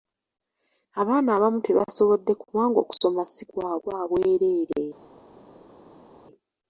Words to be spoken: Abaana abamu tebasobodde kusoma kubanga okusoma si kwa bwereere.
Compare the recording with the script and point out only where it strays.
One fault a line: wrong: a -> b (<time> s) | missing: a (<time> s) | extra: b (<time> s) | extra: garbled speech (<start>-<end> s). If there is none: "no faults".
missing: kusoma (2.3 s)
extra: kwa (3.8 s)